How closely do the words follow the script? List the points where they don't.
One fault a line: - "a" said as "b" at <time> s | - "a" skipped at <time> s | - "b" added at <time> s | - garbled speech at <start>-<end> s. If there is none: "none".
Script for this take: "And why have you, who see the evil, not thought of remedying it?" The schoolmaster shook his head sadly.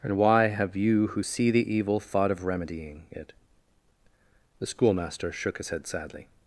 - "not" skipped at 2.0 s